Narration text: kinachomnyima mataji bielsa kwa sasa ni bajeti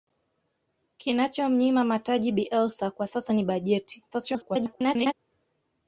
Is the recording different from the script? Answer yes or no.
yes